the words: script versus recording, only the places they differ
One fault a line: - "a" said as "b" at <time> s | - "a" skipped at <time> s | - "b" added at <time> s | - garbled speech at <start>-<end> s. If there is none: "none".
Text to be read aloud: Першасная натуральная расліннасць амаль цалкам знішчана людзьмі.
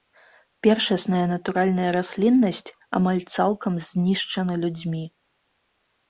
none